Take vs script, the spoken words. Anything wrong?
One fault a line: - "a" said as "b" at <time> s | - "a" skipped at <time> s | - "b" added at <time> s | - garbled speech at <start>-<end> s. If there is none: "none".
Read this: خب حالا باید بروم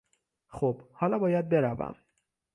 none